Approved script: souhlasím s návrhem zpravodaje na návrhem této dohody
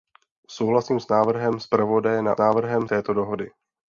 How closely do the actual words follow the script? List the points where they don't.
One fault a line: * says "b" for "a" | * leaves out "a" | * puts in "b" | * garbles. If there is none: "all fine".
all fine